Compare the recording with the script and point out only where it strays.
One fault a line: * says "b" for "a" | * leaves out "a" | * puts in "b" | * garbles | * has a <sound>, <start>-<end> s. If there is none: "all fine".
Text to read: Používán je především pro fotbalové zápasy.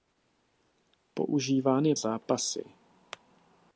* leaves out "především pro fotbalové"